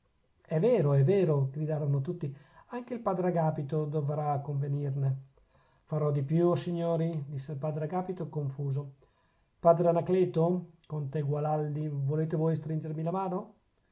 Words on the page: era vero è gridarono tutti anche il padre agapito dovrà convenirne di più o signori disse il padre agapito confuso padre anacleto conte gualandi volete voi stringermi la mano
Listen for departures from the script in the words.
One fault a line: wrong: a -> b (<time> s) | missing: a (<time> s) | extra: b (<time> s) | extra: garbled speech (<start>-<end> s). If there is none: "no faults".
wrong: era -> è (0.4 s)
extra: vero (1.0 s)
extra: farò (5.8 s)